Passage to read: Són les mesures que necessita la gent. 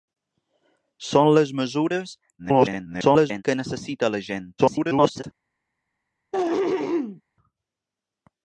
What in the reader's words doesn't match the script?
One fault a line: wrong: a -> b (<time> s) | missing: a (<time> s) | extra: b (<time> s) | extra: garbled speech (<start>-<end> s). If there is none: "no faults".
extra: garbled speech (2.4-3.4 s)
extra: garbled speech (4.6-5.2 s)